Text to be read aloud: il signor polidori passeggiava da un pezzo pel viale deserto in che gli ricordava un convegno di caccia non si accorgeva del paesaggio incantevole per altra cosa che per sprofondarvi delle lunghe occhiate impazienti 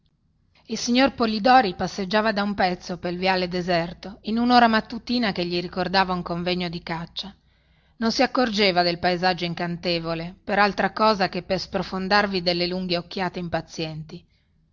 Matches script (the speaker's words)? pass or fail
fail